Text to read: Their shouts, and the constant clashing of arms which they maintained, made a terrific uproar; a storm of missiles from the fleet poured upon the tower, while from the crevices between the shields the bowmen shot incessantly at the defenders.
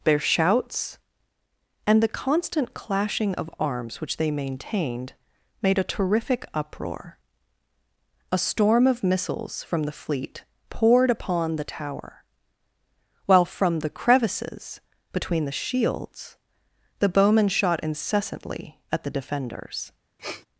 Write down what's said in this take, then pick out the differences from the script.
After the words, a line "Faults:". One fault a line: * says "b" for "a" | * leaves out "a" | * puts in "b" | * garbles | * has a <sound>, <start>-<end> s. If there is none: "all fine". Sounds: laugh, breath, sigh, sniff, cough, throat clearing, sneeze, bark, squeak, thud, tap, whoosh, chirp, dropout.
Their shouts, and the constant clashing of arms which they maintained, made a terrific uproar; a storm of missiles from the fleet poured upon the tower, while from the crevices between the shields the bowmen shot incessantly at the defenders.
Faults:
* has a sniff, 20.2-20.5 s